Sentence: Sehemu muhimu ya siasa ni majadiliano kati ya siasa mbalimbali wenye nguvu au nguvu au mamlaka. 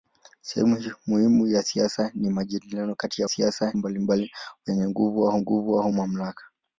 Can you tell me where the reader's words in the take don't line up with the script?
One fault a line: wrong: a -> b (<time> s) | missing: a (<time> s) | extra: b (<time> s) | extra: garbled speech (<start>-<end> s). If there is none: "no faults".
no faults